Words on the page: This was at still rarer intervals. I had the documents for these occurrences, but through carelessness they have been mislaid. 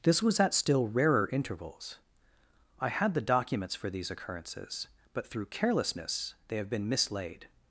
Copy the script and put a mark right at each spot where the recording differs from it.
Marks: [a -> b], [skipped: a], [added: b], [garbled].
This was at still rarer intervals. I had the documents for these occurrences, but through carelessness they have been mislaid.